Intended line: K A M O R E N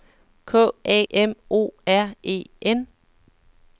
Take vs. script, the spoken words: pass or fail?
pass